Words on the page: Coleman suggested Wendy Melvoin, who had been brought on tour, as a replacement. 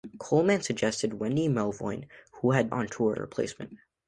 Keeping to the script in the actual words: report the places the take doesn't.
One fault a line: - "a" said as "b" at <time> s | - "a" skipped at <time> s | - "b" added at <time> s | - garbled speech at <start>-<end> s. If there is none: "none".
- "been brought" skipped at 2.7 s
- "as" skipped at 3.2 s